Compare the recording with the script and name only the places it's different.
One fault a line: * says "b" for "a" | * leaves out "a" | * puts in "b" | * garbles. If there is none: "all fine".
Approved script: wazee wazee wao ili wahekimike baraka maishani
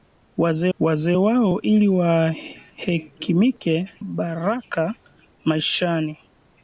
all fine